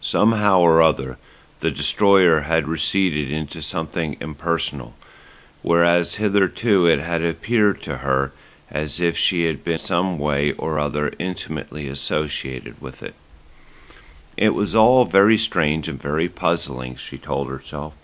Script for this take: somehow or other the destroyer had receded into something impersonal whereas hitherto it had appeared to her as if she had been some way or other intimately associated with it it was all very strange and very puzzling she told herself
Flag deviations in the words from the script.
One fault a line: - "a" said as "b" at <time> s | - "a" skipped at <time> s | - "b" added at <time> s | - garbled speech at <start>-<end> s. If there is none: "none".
none